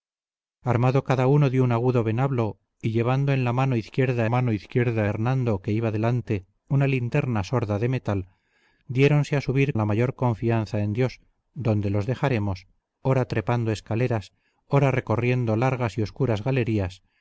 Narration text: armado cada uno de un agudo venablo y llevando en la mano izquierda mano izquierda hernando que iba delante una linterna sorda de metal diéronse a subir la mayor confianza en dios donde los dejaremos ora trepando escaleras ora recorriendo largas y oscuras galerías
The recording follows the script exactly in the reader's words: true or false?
true